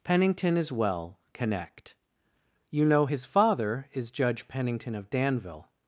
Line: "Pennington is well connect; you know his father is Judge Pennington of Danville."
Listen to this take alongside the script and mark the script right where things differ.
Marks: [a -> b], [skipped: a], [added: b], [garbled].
"Pennington is well connect; you know his father is Judge Pennington of Danville."